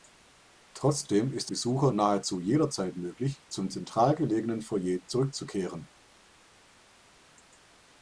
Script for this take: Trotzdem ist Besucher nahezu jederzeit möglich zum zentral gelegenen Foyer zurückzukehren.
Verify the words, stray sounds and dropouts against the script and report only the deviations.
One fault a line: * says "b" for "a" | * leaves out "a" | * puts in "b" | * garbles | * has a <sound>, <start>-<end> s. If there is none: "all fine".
all fine